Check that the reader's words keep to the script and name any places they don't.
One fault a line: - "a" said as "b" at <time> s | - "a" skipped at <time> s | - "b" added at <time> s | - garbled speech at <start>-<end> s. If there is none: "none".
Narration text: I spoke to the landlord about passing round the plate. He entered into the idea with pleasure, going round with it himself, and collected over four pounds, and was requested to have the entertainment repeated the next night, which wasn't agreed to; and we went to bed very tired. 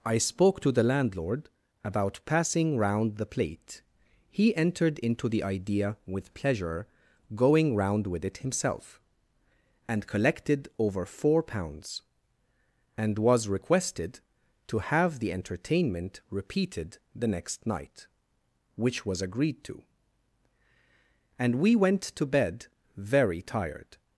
- "wasn't" said as "was" at 19.0 s